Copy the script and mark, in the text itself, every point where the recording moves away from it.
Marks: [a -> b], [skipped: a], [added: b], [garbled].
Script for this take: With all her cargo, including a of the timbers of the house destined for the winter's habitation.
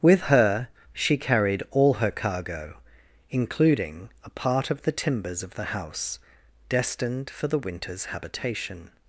With [added: her she carried] all her cargo, including a [added: part] of the timbers of the house destined for the winter's habitation.